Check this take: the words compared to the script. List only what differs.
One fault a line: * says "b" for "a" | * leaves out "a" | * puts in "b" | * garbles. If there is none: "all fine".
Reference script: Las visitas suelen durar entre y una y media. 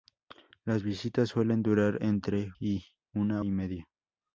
all fine